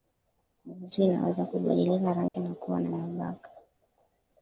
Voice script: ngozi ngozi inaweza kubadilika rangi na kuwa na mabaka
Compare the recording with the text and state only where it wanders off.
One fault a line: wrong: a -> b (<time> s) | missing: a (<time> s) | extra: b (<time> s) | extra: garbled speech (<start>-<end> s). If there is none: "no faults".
missing: ngozi (1.0 s)